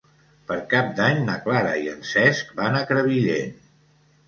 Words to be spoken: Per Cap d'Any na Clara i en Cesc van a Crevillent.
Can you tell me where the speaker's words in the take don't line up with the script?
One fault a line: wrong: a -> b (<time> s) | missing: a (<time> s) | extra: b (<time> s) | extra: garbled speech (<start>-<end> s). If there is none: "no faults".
no faults